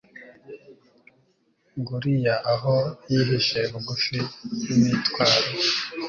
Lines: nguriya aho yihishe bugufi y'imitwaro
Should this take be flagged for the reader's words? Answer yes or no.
no